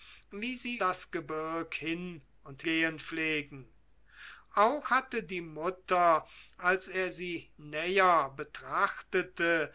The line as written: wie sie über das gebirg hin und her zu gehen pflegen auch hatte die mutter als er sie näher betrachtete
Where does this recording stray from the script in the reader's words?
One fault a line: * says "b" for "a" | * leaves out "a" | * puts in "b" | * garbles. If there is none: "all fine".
* leaves out "über"
* leaves out "her zu"